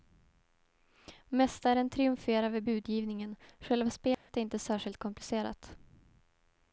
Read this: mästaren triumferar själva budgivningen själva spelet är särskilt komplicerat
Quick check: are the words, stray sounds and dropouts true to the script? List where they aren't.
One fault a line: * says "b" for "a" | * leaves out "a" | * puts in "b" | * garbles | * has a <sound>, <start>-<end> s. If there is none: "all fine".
* says "vid" for "själva"
* has a dropout, 4.1-4.3 s
* puts in "inte"